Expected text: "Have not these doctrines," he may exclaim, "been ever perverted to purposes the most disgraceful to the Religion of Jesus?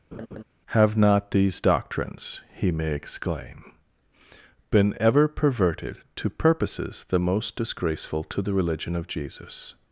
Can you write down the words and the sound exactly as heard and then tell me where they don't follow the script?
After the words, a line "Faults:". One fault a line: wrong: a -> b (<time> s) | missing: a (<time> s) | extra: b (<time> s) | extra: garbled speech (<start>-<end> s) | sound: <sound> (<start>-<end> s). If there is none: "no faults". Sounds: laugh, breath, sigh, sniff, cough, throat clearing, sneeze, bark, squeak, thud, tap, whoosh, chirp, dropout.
"Have not these doctrines," he may exclaim, "been ever perverted to purposes the most disgraceful to the Religion of Jesus?
Faults:
sound: laugh (0.1-0.4 s)